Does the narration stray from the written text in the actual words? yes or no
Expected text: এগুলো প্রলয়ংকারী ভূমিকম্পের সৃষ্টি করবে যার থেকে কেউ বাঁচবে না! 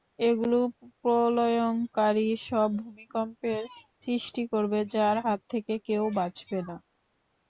yes